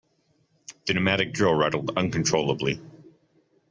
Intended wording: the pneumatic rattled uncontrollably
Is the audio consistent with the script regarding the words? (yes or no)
no